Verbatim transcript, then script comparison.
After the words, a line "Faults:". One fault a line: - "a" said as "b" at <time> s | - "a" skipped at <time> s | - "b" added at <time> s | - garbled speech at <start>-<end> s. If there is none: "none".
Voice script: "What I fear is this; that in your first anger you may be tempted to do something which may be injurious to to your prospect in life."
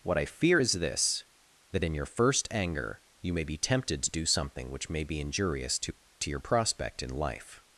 "What I fear is this; that in your first anger you may be tempted to do something which may be injurious to to your prospect in life."
Faults:
none